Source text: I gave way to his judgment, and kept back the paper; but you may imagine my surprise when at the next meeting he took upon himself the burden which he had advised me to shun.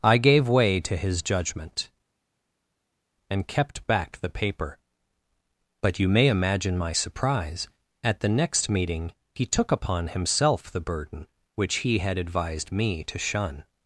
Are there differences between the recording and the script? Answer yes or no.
yes